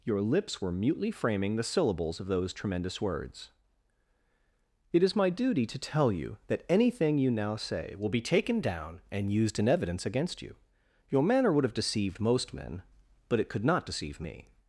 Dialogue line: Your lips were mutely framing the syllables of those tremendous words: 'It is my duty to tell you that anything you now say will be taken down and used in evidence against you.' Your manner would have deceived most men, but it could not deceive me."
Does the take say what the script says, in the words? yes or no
yes